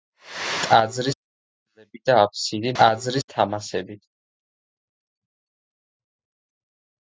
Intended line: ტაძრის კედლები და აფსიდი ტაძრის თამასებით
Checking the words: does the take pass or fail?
pass